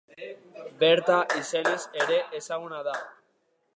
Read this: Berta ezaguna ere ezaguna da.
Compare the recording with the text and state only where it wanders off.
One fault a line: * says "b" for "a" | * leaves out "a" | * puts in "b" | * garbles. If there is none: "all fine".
* says "izenez" for "ezaguna"